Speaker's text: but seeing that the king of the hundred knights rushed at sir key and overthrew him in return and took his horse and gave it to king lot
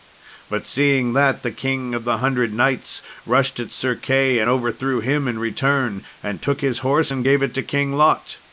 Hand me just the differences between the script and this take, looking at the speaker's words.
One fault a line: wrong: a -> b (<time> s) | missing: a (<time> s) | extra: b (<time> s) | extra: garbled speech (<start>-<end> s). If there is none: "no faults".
no faults